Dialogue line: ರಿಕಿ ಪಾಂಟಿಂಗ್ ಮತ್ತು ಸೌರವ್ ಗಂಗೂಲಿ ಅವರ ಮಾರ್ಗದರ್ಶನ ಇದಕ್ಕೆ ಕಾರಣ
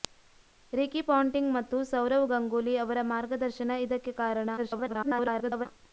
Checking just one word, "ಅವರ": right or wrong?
right